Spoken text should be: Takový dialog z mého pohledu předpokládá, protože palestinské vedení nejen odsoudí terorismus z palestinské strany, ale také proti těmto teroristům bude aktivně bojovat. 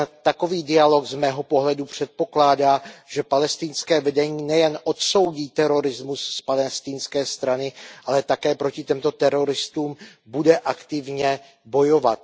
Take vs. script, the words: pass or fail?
fail